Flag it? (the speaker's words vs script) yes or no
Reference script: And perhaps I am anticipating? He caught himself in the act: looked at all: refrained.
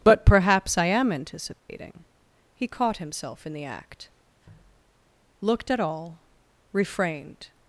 yes